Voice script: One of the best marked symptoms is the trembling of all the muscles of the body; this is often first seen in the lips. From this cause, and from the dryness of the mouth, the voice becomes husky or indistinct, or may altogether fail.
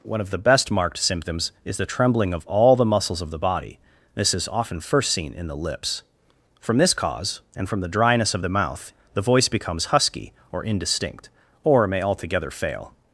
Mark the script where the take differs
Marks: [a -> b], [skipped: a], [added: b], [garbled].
One of the best marked symptoms is the trembling of all the muscles of the body; this is often first seen in the lips. From this cause, and from the dryness of the mouth, the voice becomes husky or indistinct, or may altogether fail.